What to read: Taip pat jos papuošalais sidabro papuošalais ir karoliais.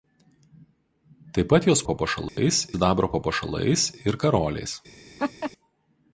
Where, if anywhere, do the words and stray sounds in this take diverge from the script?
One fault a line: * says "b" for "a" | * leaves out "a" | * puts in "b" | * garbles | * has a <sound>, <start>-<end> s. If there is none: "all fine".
* has a dropout, 2.3-2.4 s
* has a laugh, 5.2-5.5 s